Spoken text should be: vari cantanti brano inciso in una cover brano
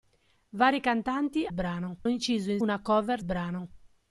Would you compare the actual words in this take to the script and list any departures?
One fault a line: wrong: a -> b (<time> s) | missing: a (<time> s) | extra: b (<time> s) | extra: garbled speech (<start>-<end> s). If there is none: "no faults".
no faults